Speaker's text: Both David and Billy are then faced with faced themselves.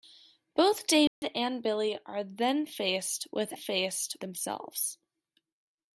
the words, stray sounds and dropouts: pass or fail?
fail